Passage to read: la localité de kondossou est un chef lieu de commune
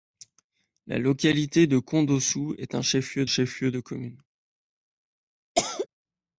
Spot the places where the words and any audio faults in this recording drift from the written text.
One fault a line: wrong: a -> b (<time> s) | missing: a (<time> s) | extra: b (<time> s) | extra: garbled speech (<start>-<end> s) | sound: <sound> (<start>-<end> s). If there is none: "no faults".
extra: chef lieu (3.2 s)
sound: cough (5.5-5.9 s)